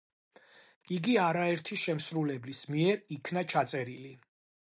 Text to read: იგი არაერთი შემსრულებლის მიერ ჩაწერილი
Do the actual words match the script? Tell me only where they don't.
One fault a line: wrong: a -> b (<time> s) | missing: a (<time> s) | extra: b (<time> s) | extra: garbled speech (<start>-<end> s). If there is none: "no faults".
extra: იქნა (3.2 s)